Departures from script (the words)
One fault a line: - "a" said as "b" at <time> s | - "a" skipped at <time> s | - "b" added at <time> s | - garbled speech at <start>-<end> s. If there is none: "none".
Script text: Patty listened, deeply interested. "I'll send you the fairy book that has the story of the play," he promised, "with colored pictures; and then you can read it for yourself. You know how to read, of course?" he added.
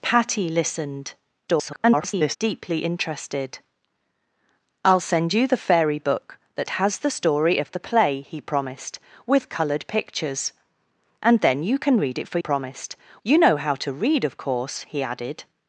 - garbled speech at 1.5-2.4 s
- "yourself" said as "promised" at 12.4 s